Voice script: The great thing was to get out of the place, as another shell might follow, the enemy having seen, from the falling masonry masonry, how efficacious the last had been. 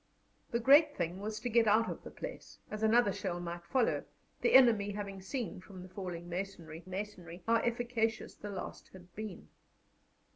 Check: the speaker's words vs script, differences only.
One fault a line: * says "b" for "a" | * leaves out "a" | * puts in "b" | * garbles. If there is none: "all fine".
all fine